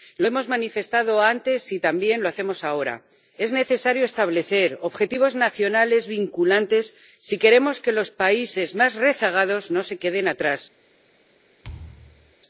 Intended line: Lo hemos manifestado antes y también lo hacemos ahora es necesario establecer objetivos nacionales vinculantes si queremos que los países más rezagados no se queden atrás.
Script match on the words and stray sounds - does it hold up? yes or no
no